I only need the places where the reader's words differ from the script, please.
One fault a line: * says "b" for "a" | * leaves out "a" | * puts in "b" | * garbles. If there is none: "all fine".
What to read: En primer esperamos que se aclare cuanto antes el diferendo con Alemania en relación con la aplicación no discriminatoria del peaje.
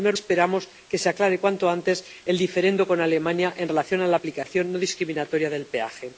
all fine